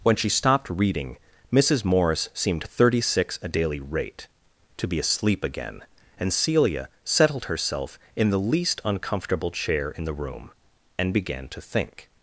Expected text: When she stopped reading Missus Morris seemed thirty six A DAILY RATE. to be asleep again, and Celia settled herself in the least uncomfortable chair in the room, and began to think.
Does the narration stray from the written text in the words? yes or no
no